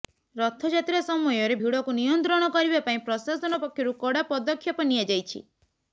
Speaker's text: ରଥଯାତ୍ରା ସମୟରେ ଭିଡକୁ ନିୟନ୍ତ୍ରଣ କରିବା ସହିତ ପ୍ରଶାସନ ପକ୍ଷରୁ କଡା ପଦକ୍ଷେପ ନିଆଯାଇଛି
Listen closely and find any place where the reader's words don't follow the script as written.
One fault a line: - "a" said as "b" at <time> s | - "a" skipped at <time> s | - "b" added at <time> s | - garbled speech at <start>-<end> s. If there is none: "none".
- "ସହିତ" said as "ପାଇଁ" at 2.8 s